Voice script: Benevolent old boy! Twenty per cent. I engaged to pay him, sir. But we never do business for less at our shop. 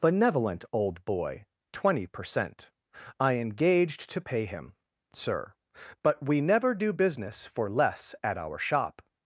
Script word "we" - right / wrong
right